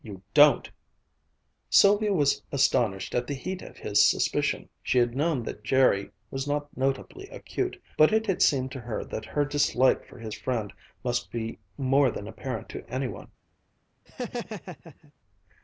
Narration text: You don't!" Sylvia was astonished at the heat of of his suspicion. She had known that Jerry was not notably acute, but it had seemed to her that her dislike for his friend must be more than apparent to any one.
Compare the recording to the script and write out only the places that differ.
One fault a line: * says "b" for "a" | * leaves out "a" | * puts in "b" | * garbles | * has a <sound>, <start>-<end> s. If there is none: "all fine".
* leaves out "of"
* has a laugh, 14.1-15.1 s